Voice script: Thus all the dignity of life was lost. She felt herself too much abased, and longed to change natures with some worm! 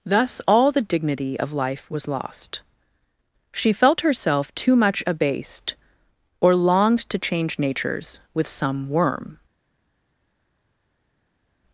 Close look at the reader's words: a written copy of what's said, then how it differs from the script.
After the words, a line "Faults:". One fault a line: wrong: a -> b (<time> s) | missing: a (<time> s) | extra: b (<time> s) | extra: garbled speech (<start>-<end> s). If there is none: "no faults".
Thus all the dignity of life was lost. She felt herself too much abased, or longed to change natures with some worm!
Faults:
wrong: and -> or (6.4 s)